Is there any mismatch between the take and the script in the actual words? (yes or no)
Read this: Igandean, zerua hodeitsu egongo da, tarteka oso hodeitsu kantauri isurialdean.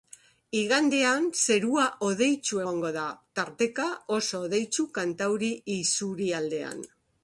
no